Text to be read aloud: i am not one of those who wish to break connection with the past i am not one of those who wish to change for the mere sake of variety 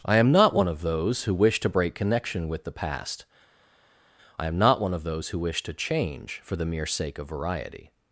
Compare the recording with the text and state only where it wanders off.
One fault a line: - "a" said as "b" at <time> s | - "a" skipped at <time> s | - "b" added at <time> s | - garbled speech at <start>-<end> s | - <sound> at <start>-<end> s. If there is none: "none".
none